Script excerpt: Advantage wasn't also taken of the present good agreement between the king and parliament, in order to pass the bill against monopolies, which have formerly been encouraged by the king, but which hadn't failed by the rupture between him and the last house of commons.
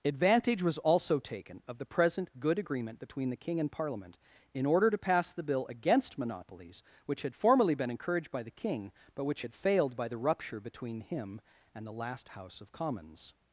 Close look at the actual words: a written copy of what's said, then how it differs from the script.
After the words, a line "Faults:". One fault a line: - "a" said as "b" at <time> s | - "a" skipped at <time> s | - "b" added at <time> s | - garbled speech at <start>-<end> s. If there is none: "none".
Advantage was also taken of the present good agreement between the king and parliament, in order to pass the bill against monopolies, which had formerly been encouraged by the king, but which had failed by the rupture between him and the last house of commons.
Faults:
- "wasn't" said as "was" at 0.6 s
- "have" said as "had" at 7.2 s
- "hadn't" said as "had" at 9.4 s